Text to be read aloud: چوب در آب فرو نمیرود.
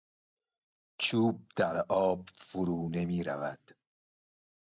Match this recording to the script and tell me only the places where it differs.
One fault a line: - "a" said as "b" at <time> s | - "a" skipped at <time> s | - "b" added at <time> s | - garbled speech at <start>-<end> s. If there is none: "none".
none